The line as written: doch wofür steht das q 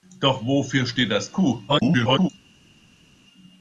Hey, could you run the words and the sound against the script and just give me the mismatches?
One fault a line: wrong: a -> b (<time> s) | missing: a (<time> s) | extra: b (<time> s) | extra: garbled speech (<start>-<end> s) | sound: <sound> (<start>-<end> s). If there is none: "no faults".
extra: garbled speech (1.7-2.3 s)